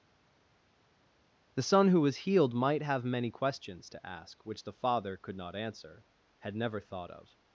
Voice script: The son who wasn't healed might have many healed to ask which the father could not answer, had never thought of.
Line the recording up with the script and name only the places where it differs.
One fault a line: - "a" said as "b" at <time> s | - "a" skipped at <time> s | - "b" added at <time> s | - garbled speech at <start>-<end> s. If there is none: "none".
- "wasn't" said as "was" at 2.0 s
- "healed" said as "questions" at 3.3 s